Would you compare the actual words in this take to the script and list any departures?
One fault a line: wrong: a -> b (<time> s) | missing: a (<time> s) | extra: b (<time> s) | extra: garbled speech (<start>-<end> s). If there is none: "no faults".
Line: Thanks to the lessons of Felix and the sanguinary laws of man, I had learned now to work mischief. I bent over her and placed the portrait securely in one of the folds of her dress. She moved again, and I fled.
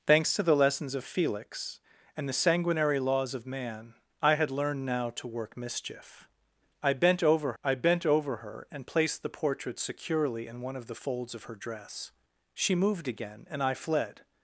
extra: I bent over (7.6 s)